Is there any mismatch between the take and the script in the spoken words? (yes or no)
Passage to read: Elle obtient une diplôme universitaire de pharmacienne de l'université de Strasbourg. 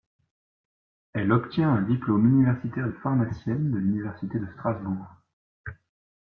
yes